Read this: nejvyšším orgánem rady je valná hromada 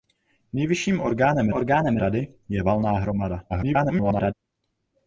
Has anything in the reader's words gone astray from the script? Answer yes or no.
yes